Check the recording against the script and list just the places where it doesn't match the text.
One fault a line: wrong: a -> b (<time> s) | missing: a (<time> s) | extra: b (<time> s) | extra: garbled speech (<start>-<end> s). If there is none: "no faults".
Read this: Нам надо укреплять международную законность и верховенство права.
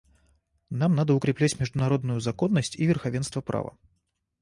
no faults